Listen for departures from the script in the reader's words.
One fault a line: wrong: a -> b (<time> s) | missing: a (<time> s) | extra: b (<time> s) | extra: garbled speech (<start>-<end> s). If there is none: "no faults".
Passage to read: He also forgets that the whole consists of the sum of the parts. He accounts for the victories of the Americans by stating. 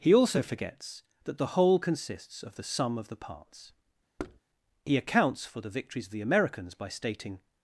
no faults